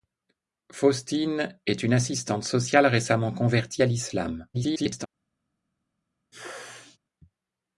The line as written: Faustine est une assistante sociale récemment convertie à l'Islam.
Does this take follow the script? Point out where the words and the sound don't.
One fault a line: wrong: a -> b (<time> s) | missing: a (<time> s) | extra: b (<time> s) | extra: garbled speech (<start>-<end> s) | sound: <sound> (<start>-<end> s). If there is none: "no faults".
extra: garbled speech (4.5-5.1 s)
sound: sneeze (6.3-7.0 s)